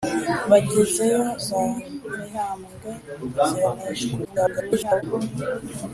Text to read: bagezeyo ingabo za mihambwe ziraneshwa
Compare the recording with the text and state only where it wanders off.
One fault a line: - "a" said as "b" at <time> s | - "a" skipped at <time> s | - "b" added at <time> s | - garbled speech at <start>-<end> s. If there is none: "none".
- "ingabo" skipped at 1.2 s
- garbled speech at 4.2-5.0 s